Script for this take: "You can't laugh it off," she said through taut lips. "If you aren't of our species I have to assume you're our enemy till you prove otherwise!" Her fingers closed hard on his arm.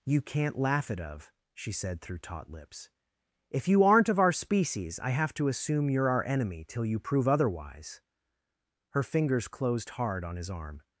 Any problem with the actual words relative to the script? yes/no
yes